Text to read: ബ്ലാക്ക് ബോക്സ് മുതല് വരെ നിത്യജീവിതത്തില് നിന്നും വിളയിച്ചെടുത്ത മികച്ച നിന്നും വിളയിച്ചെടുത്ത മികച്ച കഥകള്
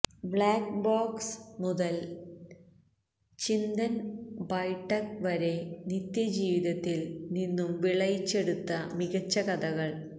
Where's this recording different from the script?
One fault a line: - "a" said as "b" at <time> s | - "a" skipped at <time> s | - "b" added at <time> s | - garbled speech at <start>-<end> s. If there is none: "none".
- "ചിന്തന് ബൈഠക്" added at 3.4 s
- "നിന്നും വിളയിച്ചെടുത്ത മികച്ച" skipped at 9.4 s